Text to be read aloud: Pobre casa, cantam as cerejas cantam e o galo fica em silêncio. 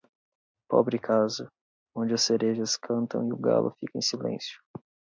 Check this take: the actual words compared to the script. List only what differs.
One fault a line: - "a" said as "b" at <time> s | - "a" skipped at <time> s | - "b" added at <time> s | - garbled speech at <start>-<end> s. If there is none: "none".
- "cantam" said as "onde" at 1.9 s